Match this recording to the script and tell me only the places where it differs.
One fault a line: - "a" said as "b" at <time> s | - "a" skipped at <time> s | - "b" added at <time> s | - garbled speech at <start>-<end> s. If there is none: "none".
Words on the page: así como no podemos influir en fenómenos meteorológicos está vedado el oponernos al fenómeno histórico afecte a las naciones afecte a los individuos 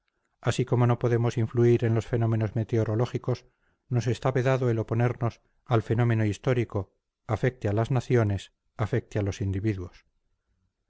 - "los" added at 1.9 s
- "nos" added at 3.9 s